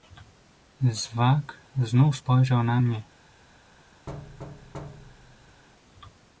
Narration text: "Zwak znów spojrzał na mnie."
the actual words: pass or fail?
pass